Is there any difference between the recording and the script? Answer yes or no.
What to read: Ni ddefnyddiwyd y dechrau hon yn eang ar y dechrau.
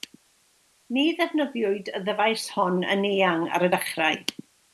yes